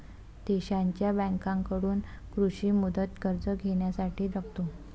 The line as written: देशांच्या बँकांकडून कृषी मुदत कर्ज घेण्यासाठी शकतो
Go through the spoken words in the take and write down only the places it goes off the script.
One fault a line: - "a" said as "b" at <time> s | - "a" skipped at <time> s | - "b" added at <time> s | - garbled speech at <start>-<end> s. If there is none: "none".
none